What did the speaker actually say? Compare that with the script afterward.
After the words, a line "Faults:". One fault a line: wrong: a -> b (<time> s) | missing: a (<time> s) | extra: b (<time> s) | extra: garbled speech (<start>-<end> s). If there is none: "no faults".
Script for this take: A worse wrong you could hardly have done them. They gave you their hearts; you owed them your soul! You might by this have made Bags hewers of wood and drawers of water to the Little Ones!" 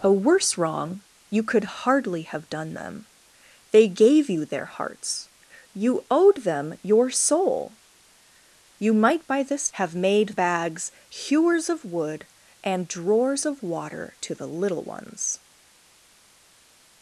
A worse wrong you could hardly have done them. They gave you their hearts; you owed them your soul! You might by this have made Bags hewers of wood and drawers of water to the Little Ones!"
Faults:
no faults